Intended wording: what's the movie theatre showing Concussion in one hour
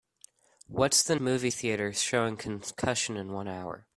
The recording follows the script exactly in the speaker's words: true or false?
true